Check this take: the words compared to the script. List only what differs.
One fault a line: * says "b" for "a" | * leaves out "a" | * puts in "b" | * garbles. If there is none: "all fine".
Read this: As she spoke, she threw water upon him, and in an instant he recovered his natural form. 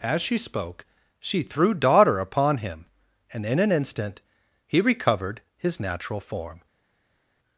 * says "daughter" for "water"